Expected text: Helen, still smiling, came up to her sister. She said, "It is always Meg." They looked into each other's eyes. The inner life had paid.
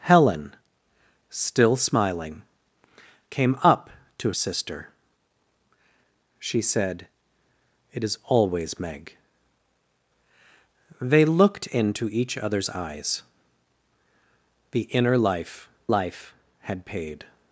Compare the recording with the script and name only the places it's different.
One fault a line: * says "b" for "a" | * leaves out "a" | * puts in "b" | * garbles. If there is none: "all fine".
* leaves out "her"
* puts in "life"